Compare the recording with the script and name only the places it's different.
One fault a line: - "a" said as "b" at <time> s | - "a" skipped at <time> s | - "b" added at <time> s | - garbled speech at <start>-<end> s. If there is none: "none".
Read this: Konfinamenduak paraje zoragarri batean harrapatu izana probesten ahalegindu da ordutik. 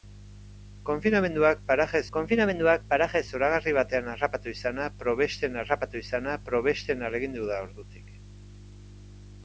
- "konfinamenduak paraje" added at 2.2 s
- "harrapatu izana probesten" added at 5.6 s